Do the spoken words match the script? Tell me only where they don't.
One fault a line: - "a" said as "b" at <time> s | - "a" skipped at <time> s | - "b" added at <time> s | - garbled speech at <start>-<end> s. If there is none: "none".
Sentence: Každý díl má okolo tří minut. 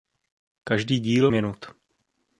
- "má okolo tří" skipped at 1.3 s